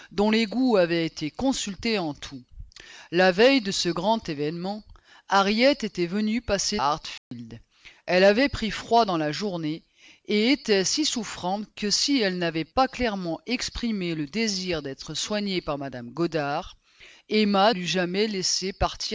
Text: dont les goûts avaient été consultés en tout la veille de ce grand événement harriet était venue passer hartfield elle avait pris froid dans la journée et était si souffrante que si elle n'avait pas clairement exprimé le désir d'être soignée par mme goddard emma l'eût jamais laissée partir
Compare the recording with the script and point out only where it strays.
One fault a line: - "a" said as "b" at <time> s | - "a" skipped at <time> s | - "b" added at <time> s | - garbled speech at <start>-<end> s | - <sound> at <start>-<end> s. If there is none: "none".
- dropout at 7.2-7.3 s